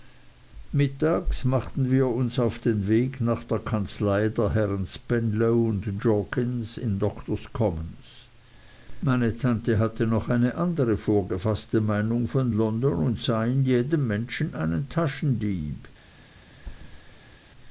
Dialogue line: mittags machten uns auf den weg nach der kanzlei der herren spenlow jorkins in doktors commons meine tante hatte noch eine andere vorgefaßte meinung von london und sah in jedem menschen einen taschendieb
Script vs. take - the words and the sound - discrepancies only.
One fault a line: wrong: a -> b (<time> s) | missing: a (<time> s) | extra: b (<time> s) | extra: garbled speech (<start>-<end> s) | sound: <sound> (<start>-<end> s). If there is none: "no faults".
extra: wir (1.9 s)
sound: thud (16.6-17.5 s)